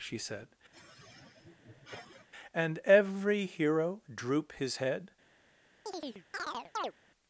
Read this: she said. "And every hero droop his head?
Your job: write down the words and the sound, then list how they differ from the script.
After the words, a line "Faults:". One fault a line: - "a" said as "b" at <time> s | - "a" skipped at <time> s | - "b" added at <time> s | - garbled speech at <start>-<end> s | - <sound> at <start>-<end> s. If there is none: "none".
she said. "And every hero droop his head?
Faults:
- sigh at 0.7-2.3 s
- chirp at 5.9-6.9 s